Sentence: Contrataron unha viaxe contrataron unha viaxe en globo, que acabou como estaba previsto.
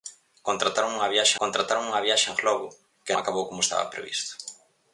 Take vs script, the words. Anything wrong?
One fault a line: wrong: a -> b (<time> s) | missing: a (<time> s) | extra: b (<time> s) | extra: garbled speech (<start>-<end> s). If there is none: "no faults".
no faults